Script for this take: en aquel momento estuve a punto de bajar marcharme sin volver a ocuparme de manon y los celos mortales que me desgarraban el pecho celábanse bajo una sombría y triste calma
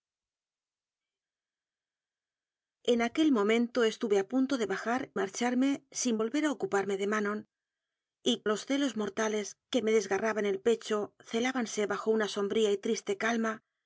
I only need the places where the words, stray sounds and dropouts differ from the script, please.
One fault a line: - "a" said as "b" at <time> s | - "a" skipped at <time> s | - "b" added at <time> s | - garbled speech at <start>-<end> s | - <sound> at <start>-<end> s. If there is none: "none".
none